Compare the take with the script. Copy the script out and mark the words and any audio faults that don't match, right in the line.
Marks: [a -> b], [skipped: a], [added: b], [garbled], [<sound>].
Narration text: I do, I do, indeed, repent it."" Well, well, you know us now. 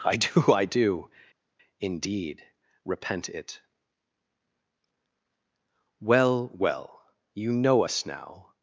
I do, I do, indeed, repent it."" Well, well, you know us now.